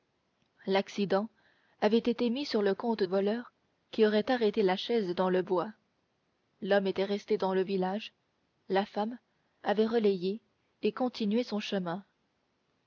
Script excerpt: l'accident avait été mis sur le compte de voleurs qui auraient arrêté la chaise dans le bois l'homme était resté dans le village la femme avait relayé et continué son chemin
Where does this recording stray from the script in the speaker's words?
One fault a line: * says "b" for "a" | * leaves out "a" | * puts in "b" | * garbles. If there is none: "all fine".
* leaves out "de"